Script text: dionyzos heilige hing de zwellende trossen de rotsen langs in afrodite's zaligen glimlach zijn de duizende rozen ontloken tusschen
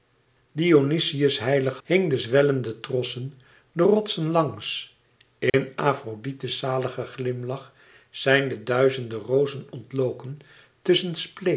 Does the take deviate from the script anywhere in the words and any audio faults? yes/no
yes